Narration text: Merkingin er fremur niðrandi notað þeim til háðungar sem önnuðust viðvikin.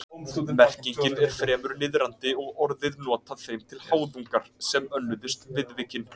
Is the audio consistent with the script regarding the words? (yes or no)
no